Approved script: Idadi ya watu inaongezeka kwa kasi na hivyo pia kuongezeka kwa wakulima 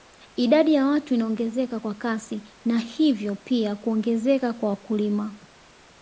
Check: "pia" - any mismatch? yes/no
no